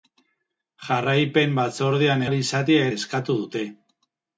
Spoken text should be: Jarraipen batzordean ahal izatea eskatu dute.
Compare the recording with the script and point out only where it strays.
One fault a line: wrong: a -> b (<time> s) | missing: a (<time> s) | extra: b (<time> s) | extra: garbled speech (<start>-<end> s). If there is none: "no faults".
no faults